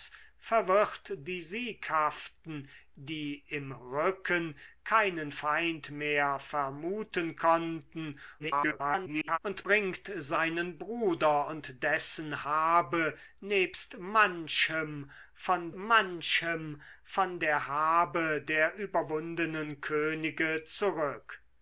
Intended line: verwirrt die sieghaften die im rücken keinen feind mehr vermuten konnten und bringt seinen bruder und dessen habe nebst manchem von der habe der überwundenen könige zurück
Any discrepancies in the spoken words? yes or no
yes